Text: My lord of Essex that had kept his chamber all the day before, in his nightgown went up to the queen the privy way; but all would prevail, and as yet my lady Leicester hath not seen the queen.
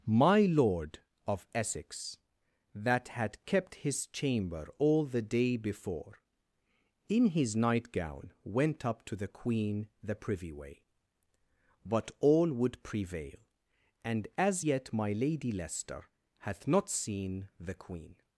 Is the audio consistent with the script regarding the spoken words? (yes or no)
yes